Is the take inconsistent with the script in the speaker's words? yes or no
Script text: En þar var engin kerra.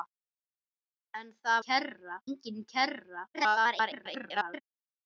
yes